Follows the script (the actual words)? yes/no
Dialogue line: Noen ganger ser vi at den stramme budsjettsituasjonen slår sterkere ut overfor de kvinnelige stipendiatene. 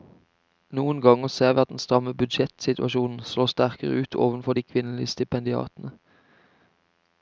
yes